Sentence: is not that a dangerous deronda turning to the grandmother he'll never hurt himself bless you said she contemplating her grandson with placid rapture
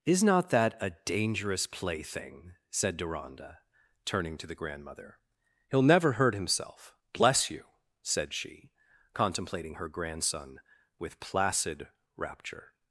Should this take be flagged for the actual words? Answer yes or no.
yes